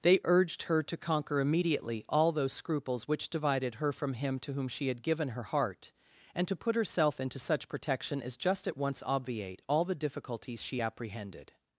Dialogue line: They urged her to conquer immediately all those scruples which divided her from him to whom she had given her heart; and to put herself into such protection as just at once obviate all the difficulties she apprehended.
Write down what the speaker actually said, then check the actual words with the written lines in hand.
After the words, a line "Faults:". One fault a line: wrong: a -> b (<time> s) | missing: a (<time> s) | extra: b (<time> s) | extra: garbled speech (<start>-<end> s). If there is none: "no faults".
They urged her to conquer immediately all those scruples which divided her from him to whom she had given her heart; and to put herself into such protection as just at once obviate all the difficulties she apprehended.
Faults:
no faults